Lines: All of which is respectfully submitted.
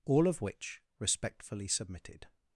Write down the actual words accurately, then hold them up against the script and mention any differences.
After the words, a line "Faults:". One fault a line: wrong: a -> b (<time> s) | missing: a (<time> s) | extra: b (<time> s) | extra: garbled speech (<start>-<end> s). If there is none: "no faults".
All of which respectfully submitted.
Faults:
missing: is (0.8 s)